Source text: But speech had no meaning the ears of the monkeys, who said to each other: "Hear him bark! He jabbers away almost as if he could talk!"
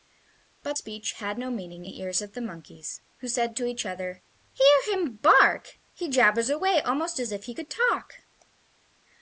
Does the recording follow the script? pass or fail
pass